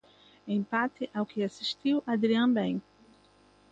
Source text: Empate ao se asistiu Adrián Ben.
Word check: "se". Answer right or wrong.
wrong